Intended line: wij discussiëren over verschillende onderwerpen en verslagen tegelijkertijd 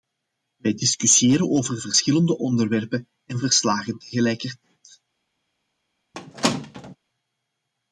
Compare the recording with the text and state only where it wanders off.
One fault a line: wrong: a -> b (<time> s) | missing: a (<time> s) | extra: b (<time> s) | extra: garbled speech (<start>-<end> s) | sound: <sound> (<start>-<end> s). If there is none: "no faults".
sound: squeak (6.1-7.0 s)